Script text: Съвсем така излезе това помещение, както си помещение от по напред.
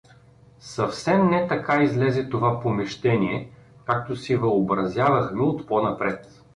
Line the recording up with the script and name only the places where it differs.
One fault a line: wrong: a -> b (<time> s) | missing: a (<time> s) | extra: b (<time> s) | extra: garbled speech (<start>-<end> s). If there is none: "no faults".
extra: не (1.3 s)
wrong: помещение -> въобразявахме (4.3 s)